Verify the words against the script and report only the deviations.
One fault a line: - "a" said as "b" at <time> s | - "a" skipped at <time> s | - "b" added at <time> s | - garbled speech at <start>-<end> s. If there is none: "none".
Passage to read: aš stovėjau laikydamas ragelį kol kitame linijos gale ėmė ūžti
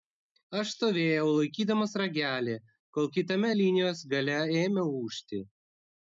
none